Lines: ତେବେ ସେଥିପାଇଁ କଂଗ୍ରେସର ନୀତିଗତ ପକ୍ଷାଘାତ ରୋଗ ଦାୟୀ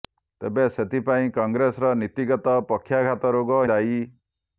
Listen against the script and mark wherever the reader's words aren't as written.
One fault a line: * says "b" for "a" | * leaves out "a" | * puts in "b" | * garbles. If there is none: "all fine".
all fine